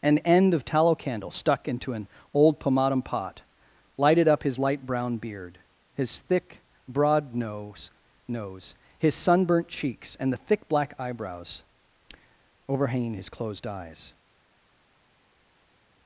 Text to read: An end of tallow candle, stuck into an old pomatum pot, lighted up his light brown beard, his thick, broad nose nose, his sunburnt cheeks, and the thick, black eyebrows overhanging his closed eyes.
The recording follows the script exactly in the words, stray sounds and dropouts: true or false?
true